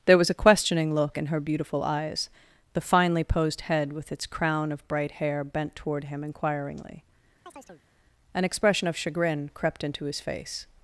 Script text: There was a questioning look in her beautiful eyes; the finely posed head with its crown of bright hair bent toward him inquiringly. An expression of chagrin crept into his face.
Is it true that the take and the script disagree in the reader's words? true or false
false